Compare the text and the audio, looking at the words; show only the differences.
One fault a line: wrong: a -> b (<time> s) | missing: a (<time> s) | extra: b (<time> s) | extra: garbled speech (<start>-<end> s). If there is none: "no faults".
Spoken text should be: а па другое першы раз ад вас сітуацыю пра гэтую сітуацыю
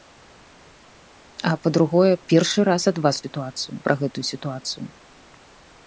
no faults